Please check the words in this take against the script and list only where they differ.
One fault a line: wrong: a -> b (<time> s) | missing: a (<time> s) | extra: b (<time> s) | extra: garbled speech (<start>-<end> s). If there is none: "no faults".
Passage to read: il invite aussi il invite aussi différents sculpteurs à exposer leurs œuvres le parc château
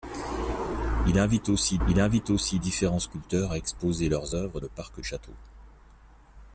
no faults